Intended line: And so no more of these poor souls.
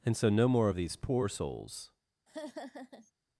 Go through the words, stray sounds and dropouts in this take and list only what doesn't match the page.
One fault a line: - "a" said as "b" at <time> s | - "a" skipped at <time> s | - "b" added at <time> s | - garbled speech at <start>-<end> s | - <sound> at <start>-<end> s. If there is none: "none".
- laugh at 2.3-3.1 s